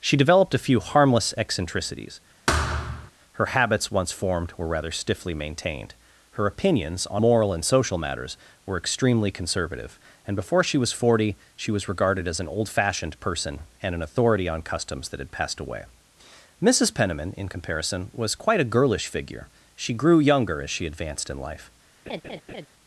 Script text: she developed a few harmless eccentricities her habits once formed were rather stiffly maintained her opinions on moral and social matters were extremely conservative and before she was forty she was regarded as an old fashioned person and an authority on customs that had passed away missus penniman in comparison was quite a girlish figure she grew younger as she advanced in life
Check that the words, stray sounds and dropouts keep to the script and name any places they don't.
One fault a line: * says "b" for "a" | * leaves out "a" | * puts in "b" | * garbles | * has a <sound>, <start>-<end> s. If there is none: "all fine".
* has a thud, 2.5-3.1 s
* has a laugh, 22.1-22.7 s